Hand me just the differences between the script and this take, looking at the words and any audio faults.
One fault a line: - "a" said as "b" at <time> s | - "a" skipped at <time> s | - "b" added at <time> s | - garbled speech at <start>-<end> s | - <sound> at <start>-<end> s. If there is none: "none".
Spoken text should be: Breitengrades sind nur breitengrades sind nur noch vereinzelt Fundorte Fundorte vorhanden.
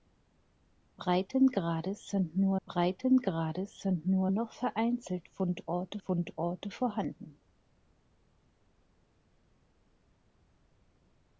none